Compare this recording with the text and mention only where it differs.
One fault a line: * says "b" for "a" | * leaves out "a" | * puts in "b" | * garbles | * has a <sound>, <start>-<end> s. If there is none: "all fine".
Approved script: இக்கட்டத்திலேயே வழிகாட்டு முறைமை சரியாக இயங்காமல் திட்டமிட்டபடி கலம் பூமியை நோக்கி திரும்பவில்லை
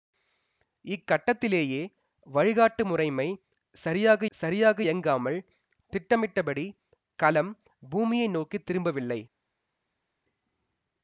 * puts in "சரியாக"